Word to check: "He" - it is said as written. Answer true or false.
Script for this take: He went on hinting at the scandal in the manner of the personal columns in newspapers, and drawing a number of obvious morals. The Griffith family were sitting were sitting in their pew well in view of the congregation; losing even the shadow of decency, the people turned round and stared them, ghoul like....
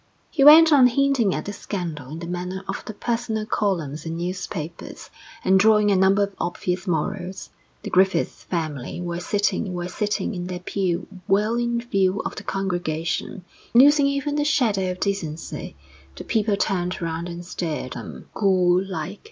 true